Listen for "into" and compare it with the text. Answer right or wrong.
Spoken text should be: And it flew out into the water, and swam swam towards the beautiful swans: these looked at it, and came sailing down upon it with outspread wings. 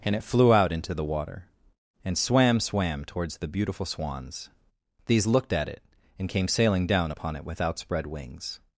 right